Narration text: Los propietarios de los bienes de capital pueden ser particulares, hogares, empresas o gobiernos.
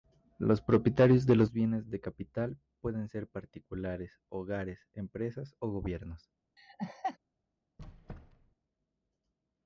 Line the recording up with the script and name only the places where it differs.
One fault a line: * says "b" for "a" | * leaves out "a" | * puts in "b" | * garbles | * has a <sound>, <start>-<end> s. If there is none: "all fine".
* has a laugh, 6.6-7.2 s
* has a squeak, 7.8-8.6 s